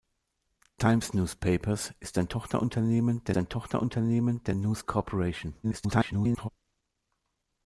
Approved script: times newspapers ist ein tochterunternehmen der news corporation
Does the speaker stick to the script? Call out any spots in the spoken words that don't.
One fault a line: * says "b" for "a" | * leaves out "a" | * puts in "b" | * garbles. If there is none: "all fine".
* puts in "ein tochterunternehmen der"
* garbles